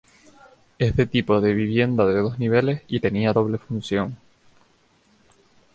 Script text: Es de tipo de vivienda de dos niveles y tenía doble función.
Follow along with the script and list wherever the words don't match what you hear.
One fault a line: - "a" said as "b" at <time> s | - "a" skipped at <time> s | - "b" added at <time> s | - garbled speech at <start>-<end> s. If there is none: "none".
none